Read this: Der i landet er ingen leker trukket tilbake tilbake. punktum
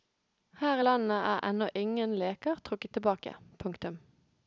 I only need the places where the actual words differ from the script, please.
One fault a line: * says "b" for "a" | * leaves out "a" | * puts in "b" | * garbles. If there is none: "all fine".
* says "Her" for "Der"
* puts in "ennå"
* leaves out "tilbake"